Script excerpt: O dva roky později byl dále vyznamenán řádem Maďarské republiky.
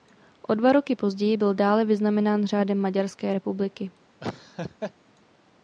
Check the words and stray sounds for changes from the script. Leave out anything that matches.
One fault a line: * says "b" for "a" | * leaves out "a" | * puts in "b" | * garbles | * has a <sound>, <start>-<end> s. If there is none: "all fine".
* has a laugh, 4.2-4.9 s